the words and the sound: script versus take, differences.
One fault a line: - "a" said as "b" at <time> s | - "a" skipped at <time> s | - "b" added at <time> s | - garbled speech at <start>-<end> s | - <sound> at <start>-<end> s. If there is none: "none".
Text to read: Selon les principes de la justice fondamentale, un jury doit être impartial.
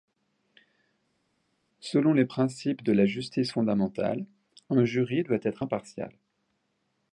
none